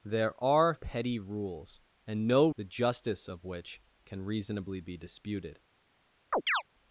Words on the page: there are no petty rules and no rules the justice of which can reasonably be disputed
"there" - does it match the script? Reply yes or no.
yes